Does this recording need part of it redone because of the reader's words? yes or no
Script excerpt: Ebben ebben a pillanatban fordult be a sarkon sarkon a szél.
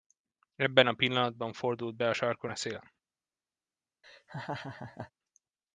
yes